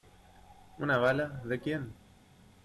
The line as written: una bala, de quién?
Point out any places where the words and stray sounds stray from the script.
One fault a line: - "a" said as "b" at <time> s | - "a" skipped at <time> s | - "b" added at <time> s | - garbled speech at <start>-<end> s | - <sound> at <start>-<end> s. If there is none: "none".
none